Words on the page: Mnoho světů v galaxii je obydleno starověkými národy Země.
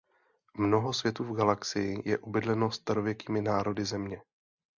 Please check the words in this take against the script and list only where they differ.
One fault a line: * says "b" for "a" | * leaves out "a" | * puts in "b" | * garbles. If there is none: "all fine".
all fine